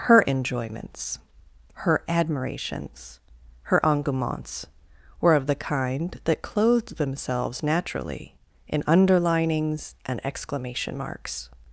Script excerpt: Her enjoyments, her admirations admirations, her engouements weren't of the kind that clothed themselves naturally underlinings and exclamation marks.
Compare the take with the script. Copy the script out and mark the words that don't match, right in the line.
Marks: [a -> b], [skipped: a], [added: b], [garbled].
Her enjoyments, her admirations [skipped: admirations,] her engouements [weren't -> were] of the kind that clothed themselves naturally [added: in] underlinings and exclamation marks.